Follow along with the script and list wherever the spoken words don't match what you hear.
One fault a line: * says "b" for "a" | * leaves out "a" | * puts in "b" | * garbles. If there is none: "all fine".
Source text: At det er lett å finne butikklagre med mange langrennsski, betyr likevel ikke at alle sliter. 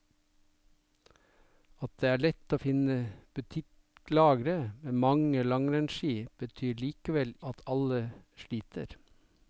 * leaves out "ikke"